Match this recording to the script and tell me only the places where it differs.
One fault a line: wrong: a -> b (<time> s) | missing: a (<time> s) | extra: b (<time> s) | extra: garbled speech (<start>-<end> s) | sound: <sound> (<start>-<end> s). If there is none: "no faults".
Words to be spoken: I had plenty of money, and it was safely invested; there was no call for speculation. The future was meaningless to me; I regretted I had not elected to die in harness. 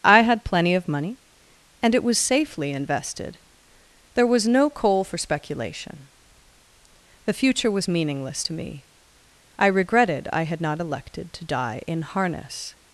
wrong: call -> coal (4.7 s)